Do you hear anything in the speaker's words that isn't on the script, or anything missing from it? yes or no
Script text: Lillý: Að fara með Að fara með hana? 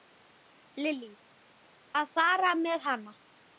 yes